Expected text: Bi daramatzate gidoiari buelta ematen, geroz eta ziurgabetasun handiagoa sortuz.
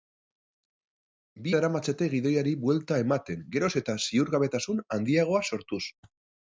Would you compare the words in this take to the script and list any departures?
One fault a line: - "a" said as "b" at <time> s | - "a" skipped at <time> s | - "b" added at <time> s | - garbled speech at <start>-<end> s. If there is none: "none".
none